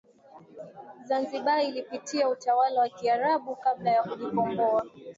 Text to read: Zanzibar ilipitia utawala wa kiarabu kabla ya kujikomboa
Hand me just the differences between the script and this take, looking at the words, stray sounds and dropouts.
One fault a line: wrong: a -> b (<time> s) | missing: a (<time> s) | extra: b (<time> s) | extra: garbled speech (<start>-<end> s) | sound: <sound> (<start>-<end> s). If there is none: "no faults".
no faults